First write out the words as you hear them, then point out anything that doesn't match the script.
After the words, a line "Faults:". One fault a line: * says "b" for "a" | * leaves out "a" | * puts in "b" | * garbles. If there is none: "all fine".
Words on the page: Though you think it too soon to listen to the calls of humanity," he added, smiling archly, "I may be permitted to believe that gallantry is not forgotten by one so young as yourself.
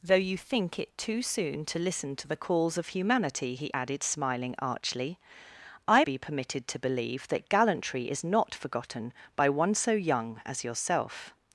Though you think it too soon to listen to the calls of humanity," he added, smiling archly, "I be permitted to believe that gallantry is not forgotten by one so young as yourself.
Faults:
* leaves out "may"